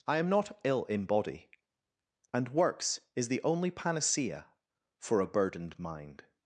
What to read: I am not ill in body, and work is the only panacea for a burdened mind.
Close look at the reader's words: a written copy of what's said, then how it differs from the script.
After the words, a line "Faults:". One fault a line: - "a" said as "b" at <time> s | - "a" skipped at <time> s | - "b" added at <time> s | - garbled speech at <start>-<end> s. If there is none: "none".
I am not ill in body, and works is the only panacea for a burdened mind.
Faults:
- "work" said as "works" at 2.5 s